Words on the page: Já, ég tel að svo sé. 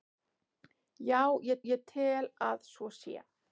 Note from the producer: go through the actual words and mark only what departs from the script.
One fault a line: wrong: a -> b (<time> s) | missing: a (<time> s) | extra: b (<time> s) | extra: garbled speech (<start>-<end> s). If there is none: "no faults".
extra: ég (1.7 s)